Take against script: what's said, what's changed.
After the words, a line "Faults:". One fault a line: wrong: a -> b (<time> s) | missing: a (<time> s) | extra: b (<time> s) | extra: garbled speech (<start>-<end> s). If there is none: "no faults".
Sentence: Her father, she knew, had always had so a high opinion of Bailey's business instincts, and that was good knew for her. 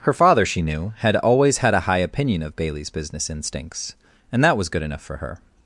Her father, she knew, had always had a high opinion of Bailey's business instincts, and that was good enough for her.
Faults:
missing: so (1.8 s)
wrong: knew -> enough (4.8 s)